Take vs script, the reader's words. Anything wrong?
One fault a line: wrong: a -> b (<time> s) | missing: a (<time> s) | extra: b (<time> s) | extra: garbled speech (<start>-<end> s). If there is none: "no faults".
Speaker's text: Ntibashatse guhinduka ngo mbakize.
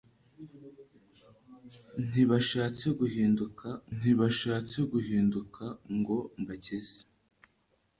extra: ntibashatse guhinduka (4.0 s)